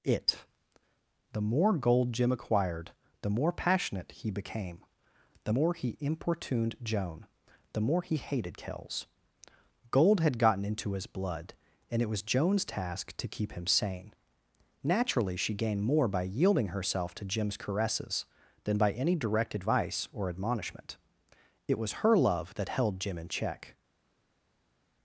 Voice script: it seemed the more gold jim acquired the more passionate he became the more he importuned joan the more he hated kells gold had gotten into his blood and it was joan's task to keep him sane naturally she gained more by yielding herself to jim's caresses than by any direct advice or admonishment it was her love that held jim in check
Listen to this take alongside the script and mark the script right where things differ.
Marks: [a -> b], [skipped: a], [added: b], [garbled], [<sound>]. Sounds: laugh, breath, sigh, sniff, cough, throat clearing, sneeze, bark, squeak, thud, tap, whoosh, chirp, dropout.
it [skipped: seemed] the more gold jim acquired the more passionate he became the more he importuned joan the more he hated kells gold had gotten into his blood and it was joan's task to keep him sane naturally she gained more by yielding herself to jim's caresses than by any direct advice or admonishment it was her love that held jim in check